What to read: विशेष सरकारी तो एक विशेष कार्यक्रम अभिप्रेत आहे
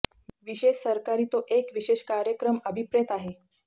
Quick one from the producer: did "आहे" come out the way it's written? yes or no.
yes